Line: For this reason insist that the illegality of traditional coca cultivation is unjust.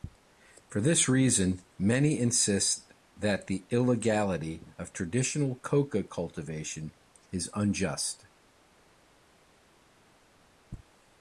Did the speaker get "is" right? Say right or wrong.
right